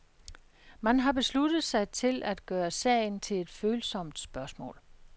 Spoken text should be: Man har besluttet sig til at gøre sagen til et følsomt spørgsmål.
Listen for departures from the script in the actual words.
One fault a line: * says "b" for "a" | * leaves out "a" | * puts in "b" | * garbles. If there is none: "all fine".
all fine